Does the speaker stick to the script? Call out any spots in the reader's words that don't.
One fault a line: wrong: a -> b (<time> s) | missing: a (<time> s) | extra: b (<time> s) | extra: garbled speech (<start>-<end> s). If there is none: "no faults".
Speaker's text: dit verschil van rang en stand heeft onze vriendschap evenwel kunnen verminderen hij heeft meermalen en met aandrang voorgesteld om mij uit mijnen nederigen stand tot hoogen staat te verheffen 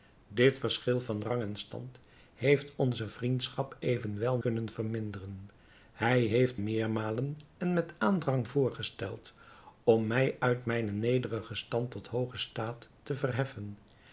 no faults